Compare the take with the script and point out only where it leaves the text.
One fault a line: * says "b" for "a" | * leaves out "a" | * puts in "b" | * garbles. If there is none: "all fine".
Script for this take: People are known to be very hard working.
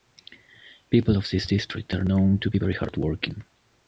* puts in "of this district"